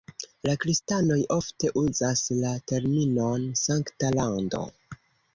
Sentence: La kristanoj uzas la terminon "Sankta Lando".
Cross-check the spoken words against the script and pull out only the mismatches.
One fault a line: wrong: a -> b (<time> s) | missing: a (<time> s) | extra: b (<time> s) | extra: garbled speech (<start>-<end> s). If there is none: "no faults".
extra: ofte (1.3 s)